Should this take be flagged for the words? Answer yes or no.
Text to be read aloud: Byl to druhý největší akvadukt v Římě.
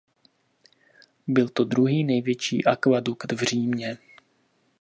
no